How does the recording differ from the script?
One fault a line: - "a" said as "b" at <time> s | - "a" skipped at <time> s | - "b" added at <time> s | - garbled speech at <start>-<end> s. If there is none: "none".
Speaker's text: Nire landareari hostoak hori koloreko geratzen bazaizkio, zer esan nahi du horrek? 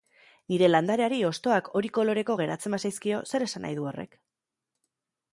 none